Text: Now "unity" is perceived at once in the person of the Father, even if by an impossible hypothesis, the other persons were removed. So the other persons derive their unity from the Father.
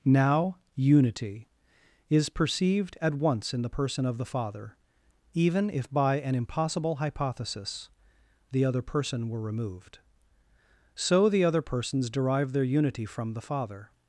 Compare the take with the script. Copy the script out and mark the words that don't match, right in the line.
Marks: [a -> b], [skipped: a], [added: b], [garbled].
Now "unity" is perceived at once in the person of the Father, even if by an impossible hypothesis, the other [persons -> person] were removed. So the other persons derive their unity from the Father.